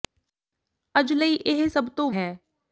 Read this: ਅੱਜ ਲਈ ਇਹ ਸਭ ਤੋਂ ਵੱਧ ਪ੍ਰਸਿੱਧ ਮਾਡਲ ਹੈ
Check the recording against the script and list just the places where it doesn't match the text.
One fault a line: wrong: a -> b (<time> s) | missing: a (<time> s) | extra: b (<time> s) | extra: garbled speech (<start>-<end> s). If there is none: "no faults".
missing: ਵੱਧ ਪ੍ਰਸਿੱਧ ਮਾਡਲ (2.1 s)